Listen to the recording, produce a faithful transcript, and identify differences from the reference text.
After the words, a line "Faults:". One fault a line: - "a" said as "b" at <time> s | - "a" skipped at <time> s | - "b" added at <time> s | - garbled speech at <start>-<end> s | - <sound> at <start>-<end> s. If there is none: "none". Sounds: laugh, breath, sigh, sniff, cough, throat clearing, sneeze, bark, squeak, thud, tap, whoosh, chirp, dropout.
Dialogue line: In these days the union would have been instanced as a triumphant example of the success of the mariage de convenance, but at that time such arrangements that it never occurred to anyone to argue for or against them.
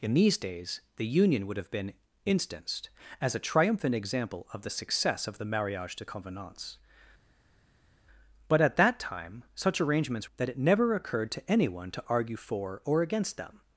In these days the union would have been instanced as a triumphant example of the success of the mariage de convenance, but at that time such arrangements that it never occurred to anyone to argue for or against them.
Faults:
none